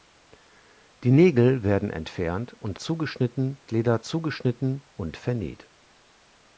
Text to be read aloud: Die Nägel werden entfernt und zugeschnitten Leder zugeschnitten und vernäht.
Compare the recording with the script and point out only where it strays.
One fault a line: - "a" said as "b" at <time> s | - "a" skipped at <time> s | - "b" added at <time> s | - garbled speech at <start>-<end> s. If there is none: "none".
none